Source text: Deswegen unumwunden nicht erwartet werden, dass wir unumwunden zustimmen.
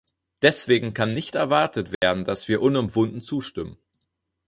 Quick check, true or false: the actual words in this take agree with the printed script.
false